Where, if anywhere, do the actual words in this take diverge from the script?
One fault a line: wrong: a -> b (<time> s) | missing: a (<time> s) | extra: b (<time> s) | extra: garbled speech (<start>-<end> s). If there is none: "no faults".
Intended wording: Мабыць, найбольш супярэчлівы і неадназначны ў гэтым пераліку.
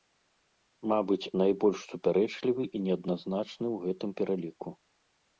no faults